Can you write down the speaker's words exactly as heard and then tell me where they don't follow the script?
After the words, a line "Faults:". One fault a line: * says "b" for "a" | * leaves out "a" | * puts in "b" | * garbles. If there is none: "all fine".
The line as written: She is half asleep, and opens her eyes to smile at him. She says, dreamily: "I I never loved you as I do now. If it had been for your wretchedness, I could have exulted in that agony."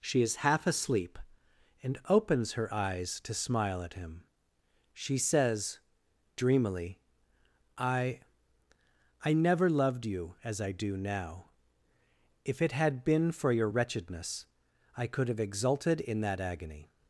She is half asleep, and opens her eyes to smile at him. She says, dreamily: "I I never loved you as I do now. If it had been for your wretchedness, I could have exulted in that agony."
Faults:
all fine